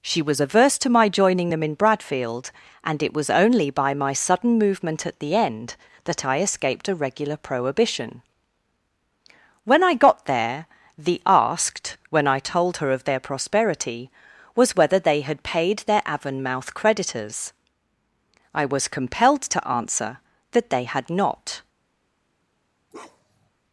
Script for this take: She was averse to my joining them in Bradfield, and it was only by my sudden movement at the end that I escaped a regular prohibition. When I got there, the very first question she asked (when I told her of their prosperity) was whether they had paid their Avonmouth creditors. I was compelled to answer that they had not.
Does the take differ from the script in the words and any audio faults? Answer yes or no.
yes